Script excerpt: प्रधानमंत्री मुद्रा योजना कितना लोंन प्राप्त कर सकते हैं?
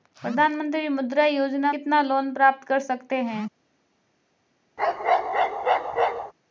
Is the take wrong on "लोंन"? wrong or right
right